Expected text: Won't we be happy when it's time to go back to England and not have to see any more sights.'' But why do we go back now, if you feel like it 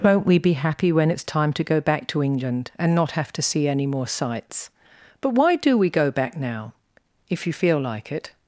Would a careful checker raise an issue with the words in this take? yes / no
no